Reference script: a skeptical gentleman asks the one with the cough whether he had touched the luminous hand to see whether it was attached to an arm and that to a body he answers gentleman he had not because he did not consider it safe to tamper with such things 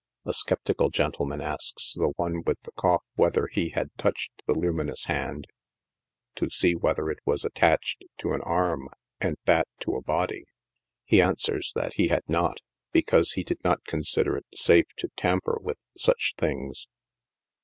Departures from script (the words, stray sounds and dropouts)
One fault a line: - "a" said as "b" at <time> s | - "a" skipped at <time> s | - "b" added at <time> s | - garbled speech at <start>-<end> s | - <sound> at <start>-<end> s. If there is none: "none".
- "gentleman" said as "that" at 11.7 s